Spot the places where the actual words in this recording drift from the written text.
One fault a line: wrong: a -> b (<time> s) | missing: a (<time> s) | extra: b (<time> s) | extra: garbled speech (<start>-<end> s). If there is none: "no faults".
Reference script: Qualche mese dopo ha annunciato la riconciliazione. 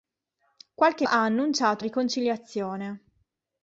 missing: mese dopo (1.1 s)
missing: la (1.8 s)